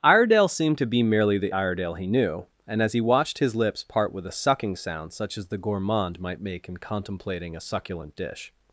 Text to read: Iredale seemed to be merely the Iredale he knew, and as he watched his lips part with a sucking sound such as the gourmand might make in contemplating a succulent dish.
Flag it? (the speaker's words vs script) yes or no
no